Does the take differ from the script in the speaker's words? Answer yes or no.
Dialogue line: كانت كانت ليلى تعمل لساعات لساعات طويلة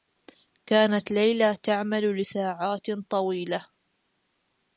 yes